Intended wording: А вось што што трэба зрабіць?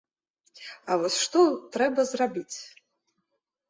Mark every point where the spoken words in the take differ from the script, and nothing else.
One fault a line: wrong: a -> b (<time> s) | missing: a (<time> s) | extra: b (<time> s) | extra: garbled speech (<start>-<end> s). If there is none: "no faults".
missing: што (1.4 s)